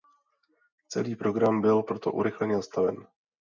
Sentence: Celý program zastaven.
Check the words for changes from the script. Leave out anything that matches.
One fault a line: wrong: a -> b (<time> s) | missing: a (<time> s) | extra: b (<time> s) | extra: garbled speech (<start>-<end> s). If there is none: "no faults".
extra: byl proto urychleně (1.6 s)